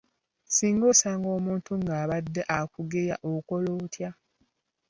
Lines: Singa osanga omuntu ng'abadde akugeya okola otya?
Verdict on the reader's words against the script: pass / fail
pass